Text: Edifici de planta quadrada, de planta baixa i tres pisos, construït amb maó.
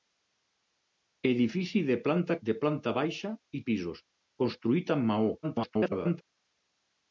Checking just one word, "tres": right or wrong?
wrong